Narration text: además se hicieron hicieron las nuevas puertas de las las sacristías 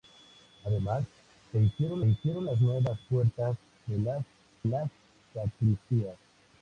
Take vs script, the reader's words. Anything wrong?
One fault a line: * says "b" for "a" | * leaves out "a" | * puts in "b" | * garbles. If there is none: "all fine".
all fine